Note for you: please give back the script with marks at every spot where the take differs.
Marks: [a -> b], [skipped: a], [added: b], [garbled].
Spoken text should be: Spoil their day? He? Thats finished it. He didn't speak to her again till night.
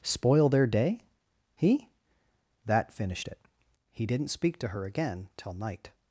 Spoil their day? He? [Thats -> That] finished it. He didn't speak to her again till night.